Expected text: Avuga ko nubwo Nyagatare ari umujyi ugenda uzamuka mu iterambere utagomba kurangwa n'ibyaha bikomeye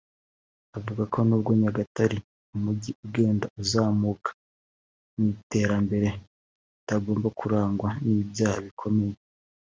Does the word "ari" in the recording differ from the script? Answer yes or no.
yes